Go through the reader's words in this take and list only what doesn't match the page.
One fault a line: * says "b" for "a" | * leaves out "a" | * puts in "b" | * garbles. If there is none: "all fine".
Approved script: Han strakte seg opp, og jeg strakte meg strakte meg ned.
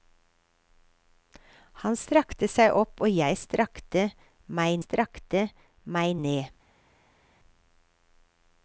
all fine